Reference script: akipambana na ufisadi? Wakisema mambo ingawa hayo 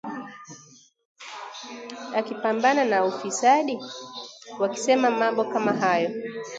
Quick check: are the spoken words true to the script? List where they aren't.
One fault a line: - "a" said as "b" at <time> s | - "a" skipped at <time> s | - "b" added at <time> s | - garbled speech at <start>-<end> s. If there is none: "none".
- "ingawa" said as "kama" at 5.4 s